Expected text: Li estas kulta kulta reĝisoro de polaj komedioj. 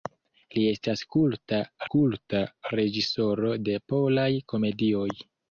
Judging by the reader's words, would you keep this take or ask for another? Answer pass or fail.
pass